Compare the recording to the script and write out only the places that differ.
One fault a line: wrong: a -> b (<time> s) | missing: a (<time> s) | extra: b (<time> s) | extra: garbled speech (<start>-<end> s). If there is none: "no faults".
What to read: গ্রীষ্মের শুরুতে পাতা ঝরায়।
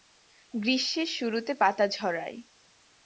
no faults